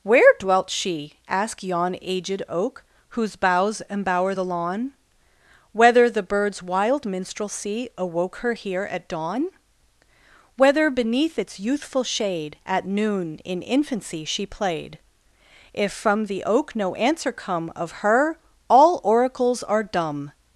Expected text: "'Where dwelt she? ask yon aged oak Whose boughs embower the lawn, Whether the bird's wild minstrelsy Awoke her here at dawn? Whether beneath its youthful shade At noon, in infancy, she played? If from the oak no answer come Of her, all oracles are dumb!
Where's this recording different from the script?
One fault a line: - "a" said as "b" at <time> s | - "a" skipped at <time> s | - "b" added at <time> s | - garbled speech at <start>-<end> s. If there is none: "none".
- "ask" said as "asked" at 1.3 s